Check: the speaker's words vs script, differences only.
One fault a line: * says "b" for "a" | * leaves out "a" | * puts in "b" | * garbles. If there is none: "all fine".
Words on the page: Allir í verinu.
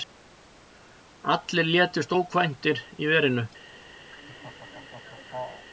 * puts in "létust ókvæntir"